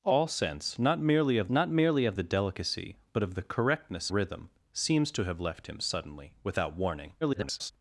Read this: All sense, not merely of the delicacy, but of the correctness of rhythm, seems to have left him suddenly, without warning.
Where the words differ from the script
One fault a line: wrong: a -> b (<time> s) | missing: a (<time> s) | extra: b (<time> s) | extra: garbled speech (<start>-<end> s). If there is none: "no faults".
extra: not merely of (1.5 s)
missing: of (4.1 s)
extra: garbled speech (7.2-7.7 s)